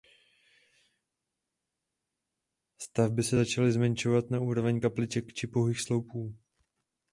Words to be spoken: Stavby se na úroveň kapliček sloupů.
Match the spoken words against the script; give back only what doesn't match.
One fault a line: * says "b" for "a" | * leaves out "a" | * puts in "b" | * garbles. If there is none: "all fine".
* puts in "začaly zmenšovat"
* puts in "či pouhých"